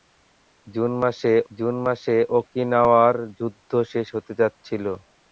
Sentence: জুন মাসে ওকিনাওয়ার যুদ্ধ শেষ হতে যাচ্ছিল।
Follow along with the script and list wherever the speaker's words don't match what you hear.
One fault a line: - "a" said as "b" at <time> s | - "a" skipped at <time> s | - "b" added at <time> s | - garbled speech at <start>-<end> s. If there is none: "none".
- "জুন মাসে" added at 1.5 s